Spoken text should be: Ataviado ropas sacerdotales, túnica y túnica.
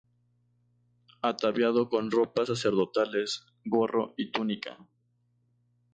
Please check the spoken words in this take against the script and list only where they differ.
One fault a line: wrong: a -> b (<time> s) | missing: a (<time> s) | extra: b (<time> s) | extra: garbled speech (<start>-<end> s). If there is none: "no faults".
extra: con (1.9 s)
wrong: túnica -> gorro (3.7 s)